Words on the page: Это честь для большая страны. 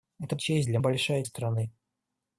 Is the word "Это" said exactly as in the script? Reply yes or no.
yes